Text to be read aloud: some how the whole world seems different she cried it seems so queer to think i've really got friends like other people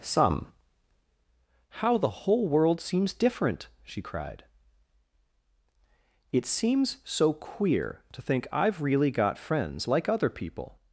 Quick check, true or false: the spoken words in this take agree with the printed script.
true